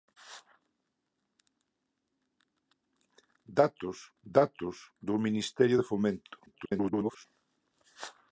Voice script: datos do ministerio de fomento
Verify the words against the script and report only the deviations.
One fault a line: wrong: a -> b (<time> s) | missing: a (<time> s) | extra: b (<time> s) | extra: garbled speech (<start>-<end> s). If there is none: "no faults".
extra: datos (4.2 s)
extra: garbled speech (6.5-7.3 s)